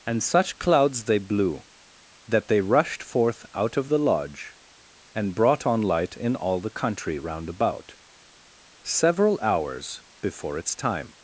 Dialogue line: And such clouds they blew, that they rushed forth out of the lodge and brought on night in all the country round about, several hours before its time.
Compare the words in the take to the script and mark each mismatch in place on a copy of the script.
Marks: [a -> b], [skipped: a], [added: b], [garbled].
And such clouds they blew, that they rushed forth out of the lodge and brought on [night -> light] in all the country round about, several hours before its time.